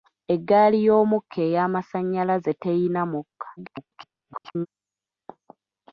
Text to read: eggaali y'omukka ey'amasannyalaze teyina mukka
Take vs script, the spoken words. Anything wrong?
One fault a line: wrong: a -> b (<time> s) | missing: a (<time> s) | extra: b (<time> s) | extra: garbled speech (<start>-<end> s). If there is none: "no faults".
extra: garbled speech (3.6-4.7 s)